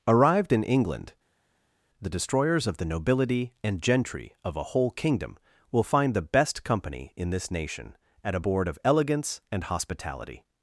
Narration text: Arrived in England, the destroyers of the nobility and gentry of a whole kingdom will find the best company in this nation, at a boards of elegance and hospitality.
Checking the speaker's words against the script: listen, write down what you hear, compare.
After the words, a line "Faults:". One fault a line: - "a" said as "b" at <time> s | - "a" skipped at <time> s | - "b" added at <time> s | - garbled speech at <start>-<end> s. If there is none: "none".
Arrived in England, the destroyers of the nobility and gentry of a whole kingdom will find the best company in this nation, at a board of elegance and hospitality.
Faults:
- "boards" said as "board" at 8.4 s